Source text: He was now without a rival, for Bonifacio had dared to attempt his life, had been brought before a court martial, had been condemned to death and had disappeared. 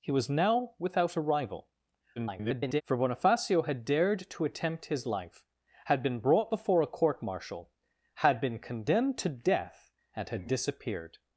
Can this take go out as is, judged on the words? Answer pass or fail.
fail